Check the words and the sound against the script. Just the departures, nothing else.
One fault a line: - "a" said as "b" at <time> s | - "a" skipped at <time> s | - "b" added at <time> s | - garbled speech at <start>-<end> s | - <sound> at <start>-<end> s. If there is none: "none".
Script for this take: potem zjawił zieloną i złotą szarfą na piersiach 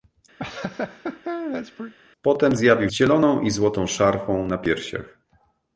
- laugh at 0.4-1.9 s